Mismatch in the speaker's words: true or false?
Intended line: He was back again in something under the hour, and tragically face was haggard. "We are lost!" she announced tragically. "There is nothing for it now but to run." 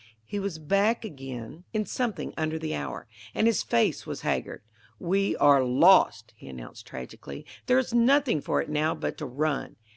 true